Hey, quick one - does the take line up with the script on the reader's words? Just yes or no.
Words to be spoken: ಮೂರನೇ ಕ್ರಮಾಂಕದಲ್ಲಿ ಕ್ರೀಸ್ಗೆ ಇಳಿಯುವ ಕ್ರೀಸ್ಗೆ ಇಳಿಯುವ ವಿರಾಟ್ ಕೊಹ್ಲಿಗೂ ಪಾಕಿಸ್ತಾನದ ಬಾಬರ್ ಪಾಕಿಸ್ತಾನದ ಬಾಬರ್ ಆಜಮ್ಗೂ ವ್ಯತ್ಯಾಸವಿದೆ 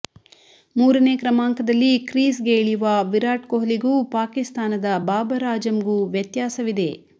no